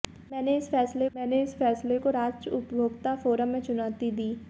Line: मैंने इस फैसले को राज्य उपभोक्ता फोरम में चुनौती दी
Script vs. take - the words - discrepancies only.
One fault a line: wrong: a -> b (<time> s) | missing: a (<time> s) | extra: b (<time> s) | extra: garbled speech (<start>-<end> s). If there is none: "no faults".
extra: मैंने इस फैसले (1.1 s)